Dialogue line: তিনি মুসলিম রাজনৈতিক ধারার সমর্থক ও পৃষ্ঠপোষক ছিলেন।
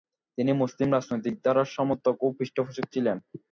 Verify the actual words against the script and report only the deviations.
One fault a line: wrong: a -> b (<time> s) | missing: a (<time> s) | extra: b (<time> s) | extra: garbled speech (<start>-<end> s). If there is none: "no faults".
no faults